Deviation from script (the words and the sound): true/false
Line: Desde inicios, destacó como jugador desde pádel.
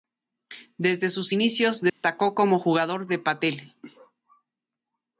true